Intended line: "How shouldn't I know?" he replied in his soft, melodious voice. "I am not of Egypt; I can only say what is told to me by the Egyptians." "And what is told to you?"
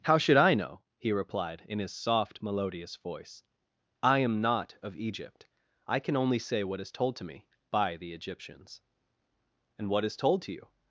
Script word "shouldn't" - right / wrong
wrong